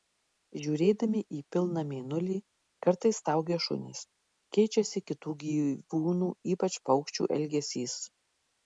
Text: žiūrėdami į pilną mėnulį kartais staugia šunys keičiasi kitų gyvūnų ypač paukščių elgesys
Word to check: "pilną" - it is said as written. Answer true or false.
true